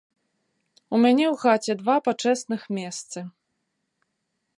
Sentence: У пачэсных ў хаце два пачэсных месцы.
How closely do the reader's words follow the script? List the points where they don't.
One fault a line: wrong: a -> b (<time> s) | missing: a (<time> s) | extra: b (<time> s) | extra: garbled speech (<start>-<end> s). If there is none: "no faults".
wrong: пачэсных -> мяне (1.0 s)